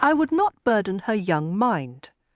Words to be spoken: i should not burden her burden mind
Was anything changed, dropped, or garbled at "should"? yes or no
yes